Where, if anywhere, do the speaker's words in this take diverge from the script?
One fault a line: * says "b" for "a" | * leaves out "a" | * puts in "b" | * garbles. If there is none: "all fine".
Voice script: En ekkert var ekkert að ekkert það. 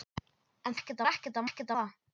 all fine